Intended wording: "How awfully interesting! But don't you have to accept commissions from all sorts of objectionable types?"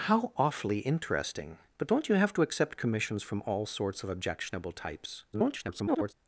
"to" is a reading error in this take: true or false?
false